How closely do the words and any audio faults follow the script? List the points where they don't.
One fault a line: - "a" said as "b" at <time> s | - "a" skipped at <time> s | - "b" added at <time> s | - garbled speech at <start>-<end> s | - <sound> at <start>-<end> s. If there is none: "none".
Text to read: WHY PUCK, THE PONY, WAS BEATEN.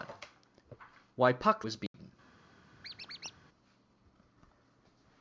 - "THE PONY" skipped at 1.6 s
- dropout at 1.9-1.9 s
- squeak at 2.8-3.4 s